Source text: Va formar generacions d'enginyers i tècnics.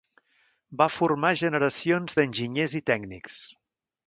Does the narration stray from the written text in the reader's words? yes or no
no